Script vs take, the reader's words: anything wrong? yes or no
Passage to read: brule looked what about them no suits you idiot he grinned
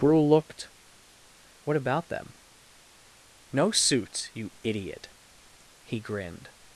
no